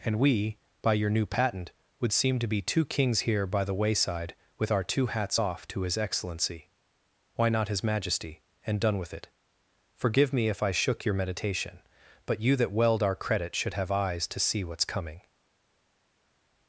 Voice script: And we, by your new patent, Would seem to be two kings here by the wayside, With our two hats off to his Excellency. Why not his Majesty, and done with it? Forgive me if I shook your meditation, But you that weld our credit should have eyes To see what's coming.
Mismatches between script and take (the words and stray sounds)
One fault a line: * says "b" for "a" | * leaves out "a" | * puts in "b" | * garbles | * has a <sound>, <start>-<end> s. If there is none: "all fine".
all fine